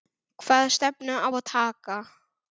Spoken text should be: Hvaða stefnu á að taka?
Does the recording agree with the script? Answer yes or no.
yes